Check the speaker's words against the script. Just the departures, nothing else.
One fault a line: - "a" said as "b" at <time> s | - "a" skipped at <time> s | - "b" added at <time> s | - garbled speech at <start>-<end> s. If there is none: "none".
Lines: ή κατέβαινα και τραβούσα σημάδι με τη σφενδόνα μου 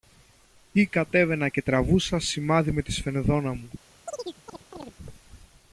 none